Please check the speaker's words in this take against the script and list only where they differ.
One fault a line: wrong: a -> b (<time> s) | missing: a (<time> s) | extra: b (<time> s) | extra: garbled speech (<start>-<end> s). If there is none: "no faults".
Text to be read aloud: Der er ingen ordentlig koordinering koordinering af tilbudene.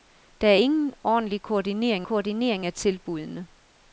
no faults